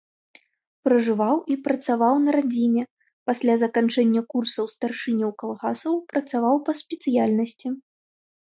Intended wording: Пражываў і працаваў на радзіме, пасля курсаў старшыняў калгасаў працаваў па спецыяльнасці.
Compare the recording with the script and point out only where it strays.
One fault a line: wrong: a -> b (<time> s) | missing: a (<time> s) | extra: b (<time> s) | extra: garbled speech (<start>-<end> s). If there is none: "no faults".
extra: заканчэння (3.6 s)